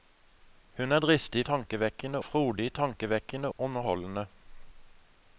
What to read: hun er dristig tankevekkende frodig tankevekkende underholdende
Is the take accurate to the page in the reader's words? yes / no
yes